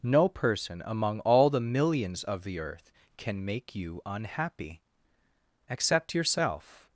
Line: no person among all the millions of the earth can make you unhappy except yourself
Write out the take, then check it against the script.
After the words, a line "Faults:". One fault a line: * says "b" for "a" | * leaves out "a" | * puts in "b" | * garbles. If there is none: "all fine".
no person among all the millions of the earth can make you unhappy except yourself
Faults:
all fine